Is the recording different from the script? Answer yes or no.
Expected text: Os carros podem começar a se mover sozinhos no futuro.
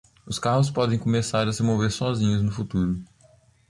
no